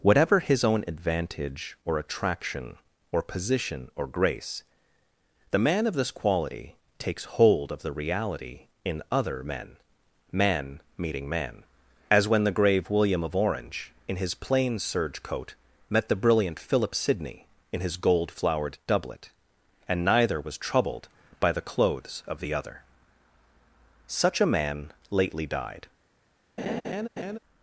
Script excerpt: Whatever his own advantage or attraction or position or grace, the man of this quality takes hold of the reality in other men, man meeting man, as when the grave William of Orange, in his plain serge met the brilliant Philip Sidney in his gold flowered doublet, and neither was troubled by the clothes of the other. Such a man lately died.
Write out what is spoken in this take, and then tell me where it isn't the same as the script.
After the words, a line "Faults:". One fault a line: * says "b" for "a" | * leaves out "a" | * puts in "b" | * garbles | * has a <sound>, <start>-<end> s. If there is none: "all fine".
Whatever his own advantage or attraction or position or grace, the man of this quality takes hold of the reality in other men, man meeting man, as when the grave William of Orange, in his plain serge coat, met the brilliant Philip Sidney in his gold flowered doublet, and neither was troubled by the clothes of the other. Such a man lately died.
Faults:
* puts in "coat"
* has a laugh, 26.6-27.4 s